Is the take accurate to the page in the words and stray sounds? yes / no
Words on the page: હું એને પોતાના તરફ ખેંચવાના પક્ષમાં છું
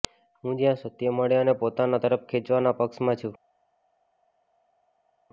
no